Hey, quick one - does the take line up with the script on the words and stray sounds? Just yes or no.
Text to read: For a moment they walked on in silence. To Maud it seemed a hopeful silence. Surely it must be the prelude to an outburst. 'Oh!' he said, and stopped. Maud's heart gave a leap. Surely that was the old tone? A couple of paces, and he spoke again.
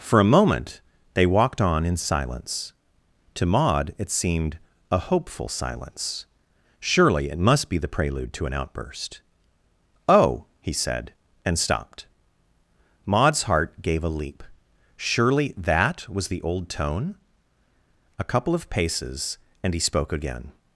yes